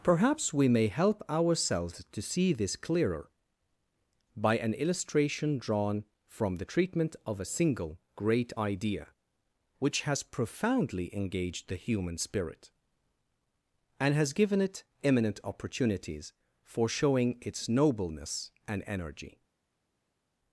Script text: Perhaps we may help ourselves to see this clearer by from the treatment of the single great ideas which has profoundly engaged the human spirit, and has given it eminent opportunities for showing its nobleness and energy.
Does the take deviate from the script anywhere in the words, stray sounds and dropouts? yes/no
yes